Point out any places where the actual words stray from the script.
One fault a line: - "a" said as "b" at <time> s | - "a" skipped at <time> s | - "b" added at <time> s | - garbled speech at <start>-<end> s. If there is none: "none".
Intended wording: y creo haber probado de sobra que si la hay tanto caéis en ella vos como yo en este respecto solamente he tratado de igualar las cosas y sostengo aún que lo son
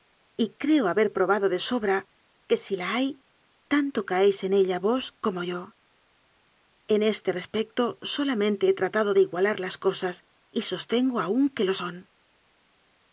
none